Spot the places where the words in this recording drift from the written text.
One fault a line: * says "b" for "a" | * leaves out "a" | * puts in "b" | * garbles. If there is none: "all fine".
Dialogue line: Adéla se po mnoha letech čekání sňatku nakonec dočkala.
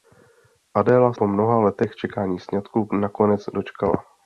* leaves out "se"